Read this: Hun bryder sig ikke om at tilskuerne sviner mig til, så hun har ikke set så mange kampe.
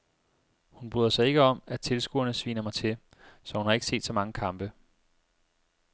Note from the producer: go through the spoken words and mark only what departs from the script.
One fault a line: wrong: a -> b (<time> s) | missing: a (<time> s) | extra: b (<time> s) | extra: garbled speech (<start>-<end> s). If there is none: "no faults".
no faults